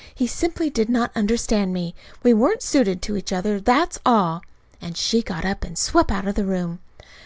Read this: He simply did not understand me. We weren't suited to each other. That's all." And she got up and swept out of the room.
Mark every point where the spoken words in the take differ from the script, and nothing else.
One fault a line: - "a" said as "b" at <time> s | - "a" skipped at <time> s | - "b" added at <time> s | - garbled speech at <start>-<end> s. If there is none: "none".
none